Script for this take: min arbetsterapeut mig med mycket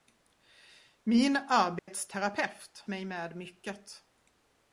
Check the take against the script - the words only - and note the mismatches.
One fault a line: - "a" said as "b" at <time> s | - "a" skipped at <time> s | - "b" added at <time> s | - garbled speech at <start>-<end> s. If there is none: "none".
none